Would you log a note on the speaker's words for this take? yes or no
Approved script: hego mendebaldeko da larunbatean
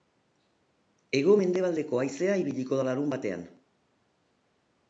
yes